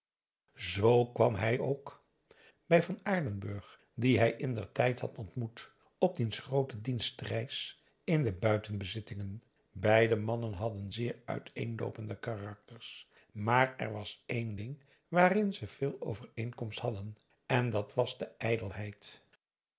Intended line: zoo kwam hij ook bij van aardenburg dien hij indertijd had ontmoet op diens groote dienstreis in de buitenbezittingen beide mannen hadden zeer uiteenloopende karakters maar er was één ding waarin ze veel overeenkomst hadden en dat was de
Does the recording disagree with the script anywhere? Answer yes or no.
no